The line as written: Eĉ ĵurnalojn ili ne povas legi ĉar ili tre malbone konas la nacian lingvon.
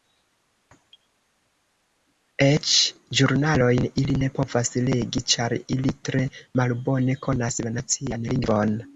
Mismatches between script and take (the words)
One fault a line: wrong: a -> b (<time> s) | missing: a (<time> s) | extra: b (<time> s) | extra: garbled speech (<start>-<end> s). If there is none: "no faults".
no faults